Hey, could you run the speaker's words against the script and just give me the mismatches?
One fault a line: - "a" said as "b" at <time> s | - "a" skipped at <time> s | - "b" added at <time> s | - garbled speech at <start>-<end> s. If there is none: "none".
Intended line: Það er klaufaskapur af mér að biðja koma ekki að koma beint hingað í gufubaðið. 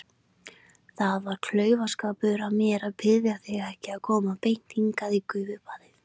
- "er" said as "var" at 1.2 s
- "koma" said as "þig" at 3.5 s